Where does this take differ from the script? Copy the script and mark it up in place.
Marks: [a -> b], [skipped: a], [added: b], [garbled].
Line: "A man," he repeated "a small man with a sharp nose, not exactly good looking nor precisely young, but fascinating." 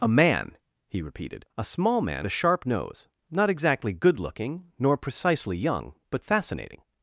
"A man," he repeated "a small man [skipped: with] a sharp nose, not exactly good looking nor precisely young, but fascinating."